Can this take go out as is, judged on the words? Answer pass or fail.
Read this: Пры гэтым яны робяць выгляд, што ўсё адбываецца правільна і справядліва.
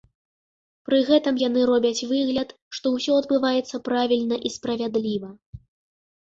pass